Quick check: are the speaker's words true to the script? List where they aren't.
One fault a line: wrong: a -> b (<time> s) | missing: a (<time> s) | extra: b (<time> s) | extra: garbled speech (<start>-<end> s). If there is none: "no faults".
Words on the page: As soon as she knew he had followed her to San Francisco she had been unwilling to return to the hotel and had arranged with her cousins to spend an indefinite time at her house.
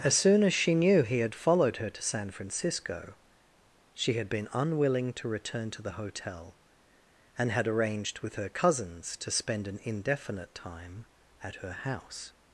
no faults